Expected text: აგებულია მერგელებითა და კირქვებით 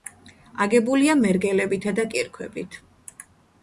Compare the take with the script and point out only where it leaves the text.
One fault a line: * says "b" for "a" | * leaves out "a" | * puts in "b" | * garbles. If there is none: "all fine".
all fine